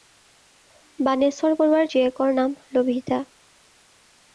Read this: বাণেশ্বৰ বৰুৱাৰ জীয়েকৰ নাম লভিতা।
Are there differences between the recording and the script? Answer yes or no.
no